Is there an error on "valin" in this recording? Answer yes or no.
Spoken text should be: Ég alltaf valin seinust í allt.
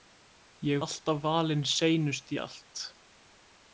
no